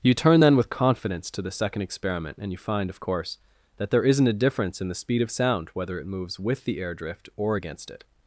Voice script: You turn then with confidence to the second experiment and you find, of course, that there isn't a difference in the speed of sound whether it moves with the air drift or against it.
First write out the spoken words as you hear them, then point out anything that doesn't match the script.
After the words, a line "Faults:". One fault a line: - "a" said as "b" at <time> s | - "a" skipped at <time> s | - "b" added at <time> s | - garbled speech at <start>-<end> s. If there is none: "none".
You turn then with confidence to the second experiment and you find, of course, that there isn't a difference in the speed of sound whether it moves with the air drift or against it.
Faults:
none